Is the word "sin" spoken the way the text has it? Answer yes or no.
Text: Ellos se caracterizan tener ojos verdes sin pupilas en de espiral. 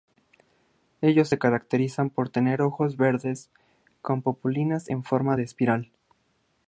no